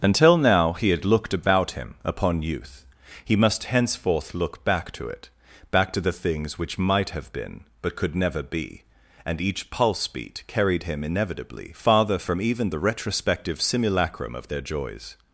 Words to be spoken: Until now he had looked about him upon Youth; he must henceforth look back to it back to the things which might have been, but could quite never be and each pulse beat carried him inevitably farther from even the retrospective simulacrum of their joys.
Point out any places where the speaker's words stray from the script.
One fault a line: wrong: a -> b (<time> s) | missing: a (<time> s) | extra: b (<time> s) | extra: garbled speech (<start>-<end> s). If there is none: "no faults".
missing: quite (8.2 s)